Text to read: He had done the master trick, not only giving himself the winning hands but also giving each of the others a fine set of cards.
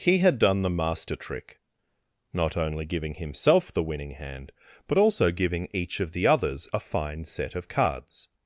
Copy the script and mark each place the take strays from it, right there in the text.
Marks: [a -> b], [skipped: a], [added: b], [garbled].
He had done the master trick, not only giving himself the winning [hands -> hand] but also giving each of the others a fine set of cards.